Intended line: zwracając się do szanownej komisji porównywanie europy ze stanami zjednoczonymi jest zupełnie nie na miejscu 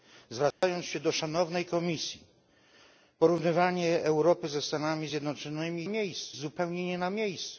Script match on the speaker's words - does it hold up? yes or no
no